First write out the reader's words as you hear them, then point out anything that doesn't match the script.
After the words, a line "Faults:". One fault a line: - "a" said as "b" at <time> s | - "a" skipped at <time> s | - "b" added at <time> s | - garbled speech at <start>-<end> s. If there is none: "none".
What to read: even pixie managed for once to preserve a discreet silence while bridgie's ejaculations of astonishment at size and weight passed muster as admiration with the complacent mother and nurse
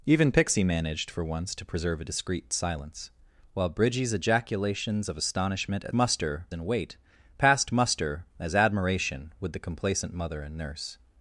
even pixie managed for once to preserve a discreet silence while bridgie's ejaculations of astonishment at muster and weight passed muster as admiration with the complacent mother and nurse
Faults:
- "size" said as "muster" at 5.9 s